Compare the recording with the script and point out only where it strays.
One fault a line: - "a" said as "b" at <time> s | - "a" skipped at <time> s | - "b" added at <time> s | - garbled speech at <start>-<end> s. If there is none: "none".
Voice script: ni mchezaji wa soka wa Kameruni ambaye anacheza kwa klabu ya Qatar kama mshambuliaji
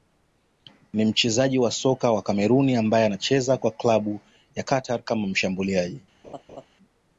none